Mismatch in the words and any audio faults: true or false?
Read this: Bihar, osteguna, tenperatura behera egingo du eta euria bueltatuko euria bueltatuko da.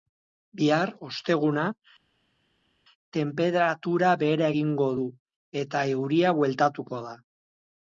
true